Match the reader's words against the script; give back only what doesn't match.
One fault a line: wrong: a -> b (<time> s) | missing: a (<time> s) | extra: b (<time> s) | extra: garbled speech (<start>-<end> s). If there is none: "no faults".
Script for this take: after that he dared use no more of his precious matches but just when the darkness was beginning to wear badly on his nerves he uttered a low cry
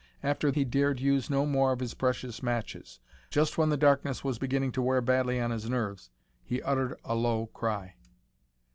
missing: that (0.5 s)
missing: but (3.0 s)